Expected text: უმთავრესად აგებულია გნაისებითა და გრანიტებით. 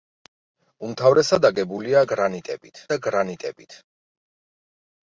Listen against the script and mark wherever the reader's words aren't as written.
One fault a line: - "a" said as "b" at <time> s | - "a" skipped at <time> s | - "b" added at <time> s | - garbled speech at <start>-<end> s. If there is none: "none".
- "გნაისებითა" said as "გრანიტებით" at 2.1 s